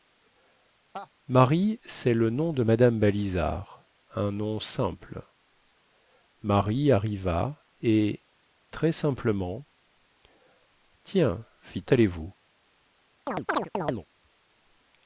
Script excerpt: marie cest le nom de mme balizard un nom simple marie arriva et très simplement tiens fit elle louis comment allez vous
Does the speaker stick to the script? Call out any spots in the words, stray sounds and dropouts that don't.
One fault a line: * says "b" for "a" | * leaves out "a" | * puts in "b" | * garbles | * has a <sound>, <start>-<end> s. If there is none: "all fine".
* has a laugh, 0.9-1.1 s
* leaves out "elle louis comment"
* has a chirp, 13.3-14.1 s